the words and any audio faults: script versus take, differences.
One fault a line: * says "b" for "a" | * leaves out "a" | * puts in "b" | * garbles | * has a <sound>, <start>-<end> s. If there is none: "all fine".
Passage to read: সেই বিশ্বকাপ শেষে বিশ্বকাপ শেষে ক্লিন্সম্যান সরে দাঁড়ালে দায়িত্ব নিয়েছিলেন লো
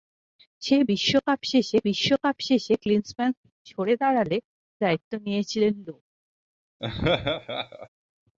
* has a laugh, 6.8-7.9 s